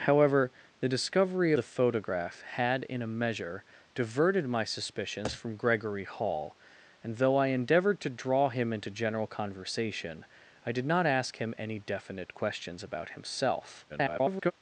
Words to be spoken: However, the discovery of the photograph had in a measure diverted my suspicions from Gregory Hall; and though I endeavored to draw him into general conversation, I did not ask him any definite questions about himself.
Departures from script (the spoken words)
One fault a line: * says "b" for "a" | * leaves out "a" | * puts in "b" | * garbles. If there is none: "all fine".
* leaves out "of"
* garbles